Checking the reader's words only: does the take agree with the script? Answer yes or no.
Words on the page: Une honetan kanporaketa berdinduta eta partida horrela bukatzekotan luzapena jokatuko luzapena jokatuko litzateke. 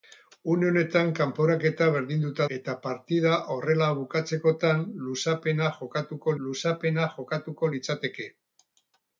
yes